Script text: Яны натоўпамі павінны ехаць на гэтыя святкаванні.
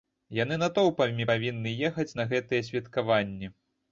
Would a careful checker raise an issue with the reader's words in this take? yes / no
no